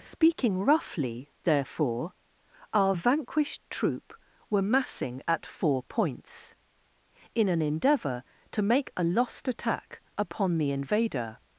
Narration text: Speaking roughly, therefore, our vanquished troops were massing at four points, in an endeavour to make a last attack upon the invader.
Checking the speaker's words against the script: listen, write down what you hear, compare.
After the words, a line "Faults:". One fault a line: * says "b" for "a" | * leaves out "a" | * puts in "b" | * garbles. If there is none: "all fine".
Speaking roughly, therefore, our vanquished troop were massing at four points, in an endeavour to make a lost attack upon the invader.
Faults:
* says "troop" for "troops"
* says "lost" for "last"